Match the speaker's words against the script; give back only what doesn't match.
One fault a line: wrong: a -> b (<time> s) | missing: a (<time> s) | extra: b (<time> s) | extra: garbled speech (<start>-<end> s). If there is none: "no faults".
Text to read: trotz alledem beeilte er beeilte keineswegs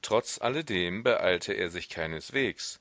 wrong: beeilte -> sich (1.7 s)